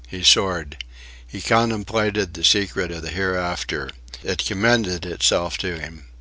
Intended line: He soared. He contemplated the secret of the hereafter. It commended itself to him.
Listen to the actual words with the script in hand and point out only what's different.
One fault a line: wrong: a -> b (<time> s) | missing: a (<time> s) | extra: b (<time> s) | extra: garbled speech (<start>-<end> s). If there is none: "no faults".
no faults